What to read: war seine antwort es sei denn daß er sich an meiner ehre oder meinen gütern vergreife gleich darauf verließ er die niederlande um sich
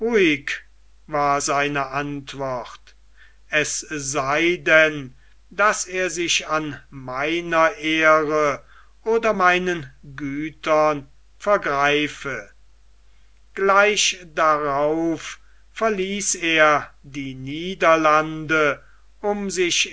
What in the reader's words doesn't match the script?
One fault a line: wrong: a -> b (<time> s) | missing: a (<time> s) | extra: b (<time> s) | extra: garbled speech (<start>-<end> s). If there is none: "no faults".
no faults